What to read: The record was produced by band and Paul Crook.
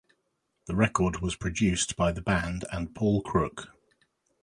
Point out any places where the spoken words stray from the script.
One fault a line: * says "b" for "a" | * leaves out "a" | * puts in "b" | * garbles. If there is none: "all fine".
* puts in "the"